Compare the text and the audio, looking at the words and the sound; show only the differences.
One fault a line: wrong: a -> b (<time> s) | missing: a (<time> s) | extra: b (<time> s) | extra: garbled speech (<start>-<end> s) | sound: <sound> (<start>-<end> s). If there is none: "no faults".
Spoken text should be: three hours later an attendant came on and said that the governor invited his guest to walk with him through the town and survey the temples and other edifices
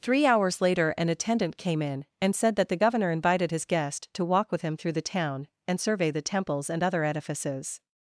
wrong: on -> in (1.8 s)